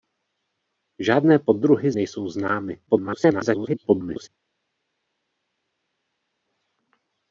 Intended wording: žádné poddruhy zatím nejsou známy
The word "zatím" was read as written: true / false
false